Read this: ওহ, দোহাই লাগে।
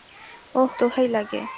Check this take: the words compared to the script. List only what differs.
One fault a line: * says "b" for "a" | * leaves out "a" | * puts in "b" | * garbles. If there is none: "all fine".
all fine